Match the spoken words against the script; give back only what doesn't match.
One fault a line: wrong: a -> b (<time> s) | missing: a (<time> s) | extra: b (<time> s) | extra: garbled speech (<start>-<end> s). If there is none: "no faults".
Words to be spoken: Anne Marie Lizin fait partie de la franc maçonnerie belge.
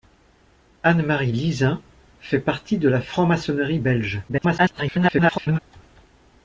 extra: garbled speech (4.3-5.6 s)